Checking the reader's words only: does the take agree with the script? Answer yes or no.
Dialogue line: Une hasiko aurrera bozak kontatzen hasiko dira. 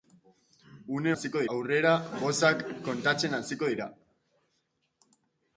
yes